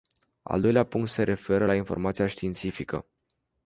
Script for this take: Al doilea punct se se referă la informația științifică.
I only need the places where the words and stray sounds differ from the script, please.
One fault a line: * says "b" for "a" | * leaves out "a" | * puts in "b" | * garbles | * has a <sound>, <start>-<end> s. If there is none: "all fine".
* leaves out "se"